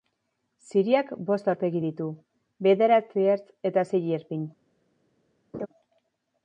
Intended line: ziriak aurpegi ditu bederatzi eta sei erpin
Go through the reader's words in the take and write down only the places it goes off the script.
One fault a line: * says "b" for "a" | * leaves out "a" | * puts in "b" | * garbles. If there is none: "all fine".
* puts in "bost"
* puts in "ertz"